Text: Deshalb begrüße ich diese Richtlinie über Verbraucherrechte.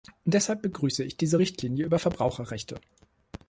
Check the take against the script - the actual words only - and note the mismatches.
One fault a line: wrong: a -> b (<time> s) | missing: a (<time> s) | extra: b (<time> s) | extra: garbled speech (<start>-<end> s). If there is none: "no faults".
no faults